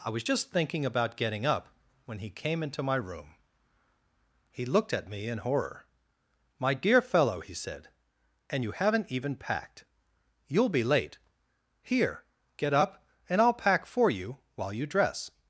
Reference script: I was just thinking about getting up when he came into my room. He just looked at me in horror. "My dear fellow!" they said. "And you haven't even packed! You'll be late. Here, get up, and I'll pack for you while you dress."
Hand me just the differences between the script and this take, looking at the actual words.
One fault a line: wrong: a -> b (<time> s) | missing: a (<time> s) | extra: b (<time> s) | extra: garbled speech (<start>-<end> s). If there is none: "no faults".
missing: just (4.6 s)
wrong: they -> he (7.4 s)